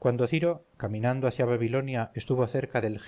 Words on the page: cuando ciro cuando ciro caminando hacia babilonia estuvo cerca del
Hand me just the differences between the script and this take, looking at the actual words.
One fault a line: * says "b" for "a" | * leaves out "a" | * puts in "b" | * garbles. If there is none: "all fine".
* leaves out "cuando ciro"